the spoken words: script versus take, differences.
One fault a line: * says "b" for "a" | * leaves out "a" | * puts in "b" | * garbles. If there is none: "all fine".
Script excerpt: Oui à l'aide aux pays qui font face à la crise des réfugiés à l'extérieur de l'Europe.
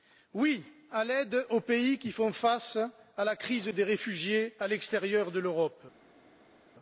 all fine